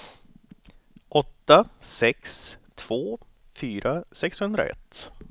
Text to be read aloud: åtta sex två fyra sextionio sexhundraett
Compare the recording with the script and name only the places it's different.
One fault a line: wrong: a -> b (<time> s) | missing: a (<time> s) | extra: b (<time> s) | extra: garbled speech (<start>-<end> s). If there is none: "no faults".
missing: sextionio (4.0 s)